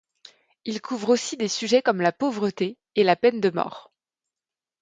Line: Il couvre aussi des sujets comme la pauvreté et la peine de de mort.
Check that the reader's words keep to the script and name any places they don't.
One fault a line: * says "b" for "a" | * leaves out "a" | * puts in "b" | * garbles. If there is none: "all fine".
* leaves out "de"